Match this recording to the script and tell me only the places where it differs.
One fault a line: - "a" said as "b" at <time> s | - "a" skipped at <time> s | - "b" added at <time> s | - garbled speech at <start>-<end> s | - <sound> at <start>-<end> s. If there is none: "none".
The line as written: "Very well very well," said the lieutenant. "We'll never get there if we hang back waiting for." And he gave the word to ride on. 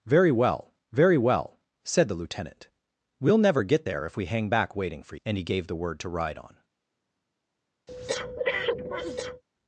- breath at 7.9-9.4 s